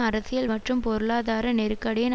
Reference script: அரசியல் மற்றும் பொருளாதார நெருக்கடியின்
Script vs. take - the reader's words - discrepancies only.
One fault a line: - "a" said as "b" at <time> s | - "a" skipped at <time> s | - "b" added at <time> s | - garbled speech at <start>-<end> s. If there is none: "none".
none